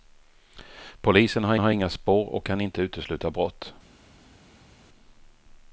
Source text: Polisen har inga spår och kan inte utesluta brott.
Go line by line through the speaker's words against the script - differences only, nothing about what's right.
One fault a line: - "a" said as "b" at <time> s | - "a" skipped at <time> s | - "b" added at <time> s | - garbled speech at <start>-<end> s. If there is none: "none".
- "har" added at 1.6 s